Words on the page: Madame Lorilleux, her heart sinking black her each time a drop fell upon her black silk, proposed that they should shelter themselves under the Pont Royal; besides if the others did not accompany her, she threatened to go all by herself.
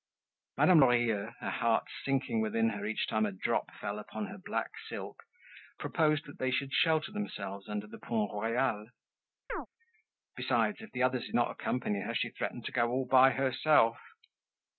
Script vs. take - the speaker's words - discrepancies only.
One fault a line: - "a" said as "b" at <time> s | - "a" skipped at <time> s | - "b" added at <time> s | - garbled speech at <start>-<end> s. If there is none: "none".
- "black" said as "within" at 2.4 s